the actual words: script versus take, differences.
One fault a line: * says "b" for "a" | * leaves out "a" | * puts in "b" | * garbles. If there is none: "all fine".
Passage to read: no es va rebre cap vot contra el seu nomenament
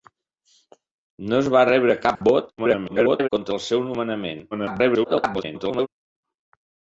* garbles
* garbles